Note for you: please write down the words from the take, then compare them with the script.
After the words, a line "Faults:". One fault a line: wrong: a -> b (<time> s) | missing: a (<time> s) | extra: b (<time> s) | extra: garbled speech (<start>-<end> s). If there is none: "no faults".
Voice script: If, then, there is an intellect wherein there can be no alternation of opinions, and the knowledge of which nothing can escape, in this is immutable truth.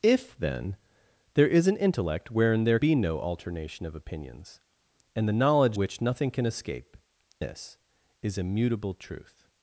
If, then, there is an intellect wherein there be no alternation of opinions, and the knowledge which nothing can escape, this is immutable truth.
Faults:
missing: can (2.8 s)
missing: of (5.8 s)
missing: in (7.0 s)